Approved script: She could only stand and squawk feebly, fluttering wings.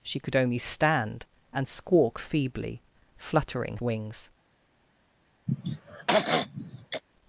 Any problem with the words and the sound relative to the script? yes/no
yes